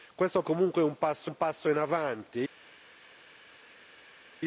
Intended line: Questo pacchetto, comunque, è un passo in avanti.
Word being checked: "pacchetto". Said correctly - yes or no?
no